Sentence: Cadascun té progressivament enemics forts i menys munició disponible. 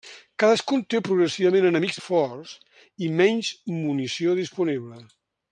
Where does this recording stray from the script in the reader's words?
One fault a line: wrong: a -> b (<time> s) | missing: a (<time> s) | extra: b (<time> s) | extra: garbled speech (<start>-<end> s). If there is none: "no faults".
no faults